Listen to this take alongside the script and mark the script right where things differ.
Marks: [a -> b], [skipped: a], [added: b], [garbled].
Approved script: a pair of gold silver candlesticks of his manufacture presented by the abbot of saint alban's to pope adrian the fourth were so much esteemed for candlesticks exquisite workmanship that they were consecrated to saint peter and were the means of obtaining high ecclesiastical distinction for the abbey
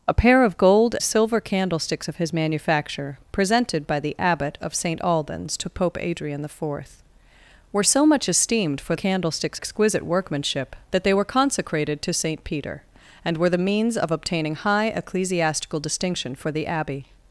a pair of gold silver candlesticks of his manufacture presented by the abbot of saint alban's to pope adrian the fourth were so much esteemed for candlesticks exquisite workmanship that they were consecrated to saint peter and were the means of obtaining high ecclesiastical distinction for the abbey